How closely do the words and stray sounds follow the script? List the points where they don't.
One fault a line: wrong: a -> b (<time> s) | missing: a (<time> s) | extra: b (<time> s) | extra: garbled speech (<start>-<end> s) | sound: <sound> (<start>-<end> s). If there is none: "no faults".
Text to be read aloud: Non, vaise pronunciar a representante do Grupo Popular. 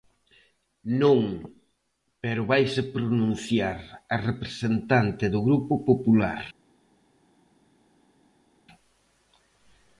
extra: pero (2.2 s)